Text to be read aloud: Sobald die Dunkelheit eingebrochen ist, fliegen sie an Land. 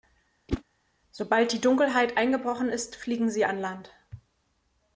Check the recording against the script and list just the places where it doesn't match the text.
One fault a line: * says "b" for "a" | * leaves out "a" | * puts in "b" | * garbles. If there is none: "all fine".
all fine